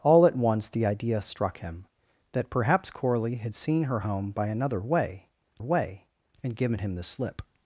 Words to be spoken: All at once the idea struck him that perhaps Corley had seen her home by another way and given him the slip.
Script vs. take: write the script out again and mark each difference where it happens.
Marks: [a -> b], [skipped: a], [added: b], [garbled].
All at once the idea struck him that perhaps Corley had seen her home by another way [added: way] and given him the slip.